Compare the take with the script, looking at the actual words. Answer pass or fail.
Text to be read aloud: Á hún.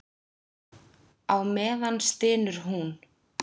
fail